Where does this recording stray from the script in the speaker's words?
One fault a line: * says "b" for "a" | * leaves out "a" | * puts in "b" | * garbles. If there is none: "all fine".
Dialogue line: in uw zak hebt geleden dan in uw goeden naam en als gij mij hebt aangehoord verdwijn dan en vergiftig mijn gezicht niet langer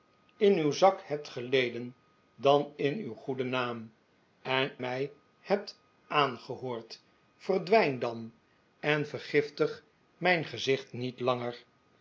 * leaves out "als gij"